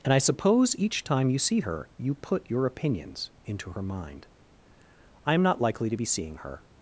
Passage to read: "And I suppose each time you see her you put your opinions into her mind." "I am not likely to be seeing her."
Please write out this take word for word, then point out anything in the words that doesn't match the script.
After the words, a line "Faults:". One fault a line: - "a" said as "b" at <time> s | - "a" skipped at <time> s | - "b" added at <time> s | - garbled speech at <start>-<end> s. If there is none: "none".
"And I suppose each time you see her you put your opinions into her mind." "I am not likely to be seeing her."
Faults:
none